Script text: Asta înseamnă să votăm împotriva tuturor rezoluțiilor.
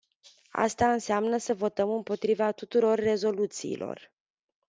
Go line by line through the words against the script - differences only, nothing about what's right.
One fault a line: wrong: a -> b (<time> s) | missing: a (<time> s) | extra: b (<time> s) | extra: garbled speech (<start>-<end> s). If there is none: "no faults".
no faults